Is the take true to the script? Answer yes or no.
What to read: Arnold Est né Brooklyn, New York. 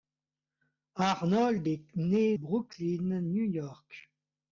yes